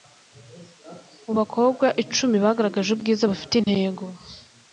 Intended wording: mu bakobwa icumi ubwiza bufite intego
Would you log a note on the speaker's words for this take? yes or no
yes